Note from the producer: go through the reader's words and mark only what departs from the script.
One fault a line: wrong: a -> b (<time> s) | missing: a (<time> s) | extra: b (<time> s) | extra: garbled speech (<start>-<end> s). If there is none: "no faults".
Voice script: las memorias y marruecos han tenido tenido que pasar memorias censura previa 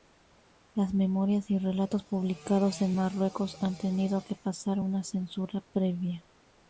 extra: relatos publicados en (1.6 s)
missing: tenido (4.2 s)
wrong: memorias -> una (4.8 s)